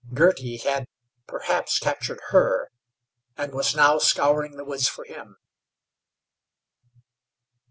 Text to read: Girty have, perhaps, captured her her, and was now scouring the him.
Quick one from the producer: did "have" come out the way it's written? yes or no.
no